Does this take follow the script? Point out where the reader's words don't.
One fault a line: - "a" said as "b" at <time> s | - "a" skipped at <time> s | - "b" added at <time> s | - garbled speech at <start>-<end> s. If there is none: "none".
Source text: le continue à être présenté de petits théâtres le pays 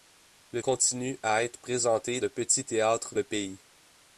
none